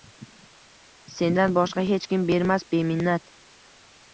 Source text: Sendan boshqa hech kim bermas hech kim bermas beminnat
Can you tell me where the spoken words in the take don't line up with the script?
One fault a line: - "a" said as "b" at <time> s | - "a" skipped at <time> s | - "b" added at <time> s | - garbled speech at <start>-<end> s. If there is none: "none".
- "hech kim bermas" skipped at 2.7 s